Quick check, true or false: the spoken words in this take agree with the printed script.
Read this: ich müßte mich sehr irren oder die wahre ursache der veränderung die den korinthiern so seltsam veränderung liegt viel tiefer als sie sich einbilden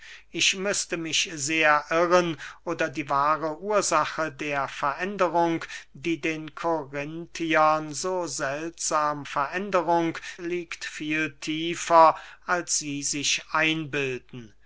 true